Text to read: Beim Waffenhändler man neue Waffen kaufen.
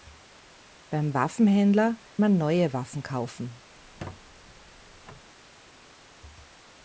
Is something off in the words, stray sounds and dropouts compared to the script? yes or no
yes